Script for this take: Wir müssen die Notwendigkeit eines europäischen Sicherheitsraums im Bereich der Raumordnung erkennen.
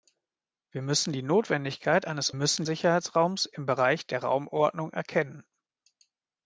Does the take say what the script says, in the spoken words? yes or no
no